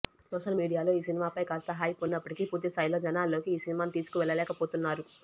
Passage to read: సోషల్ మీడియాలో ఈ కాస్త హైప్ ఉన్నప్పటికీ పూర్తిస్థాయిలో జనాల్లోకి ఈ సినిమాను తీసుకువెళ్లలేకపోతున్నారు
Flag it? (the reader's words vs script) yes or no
yes